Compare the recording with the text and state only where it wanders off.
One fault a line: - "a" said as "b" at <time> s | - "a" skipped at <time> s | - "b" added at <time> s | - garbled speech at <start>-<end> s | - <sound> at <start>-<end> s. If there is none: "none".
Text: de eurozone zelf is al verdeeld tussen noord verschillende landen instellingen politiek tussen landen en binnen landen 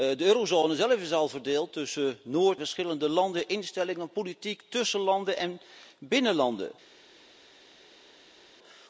none